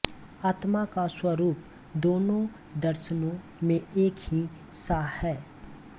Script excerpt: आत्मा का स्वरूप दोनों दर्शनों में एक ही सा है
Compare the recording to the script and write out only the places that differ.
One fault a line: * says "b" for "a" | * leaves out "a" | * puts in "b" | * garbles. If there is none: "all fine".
all fine